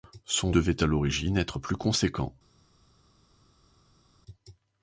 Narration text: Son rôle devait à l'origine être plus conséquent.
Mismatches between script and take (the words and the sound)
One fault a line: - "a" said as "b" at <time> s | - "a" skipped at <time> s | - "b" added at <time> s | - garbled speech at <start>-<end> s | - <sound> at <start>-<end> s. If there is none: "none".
- "rôle" skipped at 0.5 s